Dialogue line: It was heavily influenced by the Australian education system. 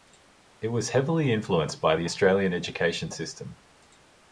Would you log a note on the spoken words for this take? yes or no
no